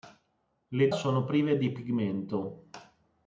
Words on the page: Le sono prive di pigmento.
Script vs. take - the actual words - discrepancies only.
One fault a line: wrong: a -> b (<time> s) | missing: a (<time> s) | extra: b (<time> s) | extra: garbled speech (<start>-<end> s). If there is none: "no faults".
no faults